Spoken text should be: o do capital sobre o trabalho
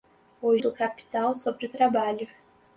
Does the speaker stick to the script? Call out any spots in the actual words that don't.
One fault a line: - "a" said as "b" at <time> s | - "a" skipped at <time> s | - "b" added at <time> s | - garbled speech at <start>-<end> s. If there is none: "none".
none